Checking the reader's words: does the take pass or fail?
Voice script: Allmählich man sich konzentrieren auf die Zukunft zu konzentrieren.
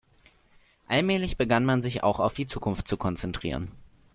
fail